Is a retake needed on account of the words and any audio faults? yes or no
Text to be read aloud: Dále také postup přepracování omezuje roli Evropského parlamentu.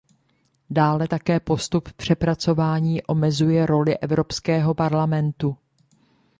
no